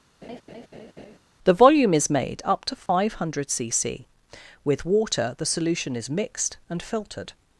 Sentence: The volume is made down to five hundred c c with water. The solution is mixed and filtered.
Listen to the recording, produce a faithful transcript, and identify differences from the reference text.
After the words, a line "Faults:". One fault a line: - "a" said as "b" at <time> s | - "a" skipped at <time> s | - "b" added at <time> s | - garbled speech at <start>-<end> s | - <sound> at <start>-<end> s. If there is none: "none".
The volume is made up to five hundred c c with water. The solution is mixed and filtered.
Faults:
- laugh at 0.2-1.2 s
- "down" said as "up" at 2.4 s
- dropout at 2.9-2.9 s